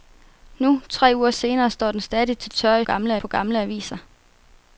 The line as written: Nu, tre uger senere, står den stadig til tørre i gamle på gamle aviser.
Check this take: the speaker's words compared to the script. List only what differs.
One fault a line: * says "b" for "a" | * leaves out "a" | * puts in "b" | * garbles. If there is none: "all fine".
all fine